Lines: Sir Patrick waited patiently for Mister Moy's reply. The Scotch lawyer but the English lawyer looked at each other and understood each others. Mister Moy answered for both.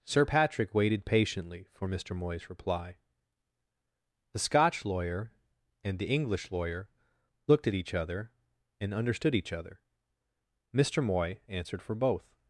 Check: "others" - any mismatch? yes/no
yes